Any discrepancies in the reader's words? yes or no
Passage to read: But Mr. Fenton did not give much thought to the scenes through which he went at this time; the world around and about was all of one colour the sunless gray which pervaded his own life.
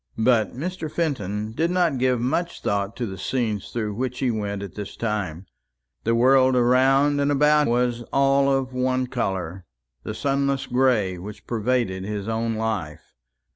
no